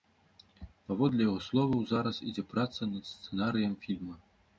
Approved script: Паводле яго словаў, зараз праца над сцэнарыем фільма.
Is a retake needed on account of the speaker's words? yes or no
yes